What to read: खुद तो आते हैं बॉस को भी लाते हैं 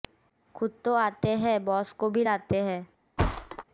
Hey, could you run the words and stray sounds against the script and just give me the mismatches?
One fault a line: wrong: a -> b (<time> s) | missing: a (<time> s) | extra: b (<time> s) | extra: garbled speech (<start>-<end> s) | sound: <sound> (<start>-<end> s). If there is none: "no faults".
sound: thud (3.2-3.6 s)